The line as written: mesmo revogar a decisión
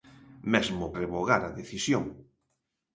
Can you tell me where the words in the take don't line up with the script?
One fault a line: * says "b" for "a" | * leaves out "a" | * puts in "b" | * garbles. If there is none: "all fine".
all fine